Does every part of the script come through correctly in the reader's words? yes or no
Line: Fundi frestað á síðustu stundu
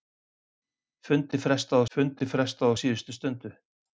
no